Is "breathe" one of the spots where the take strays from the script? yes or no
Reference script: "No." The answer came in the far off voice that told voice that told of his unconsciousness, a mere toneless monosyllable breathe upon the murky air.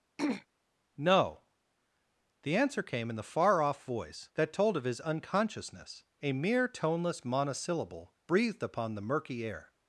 yes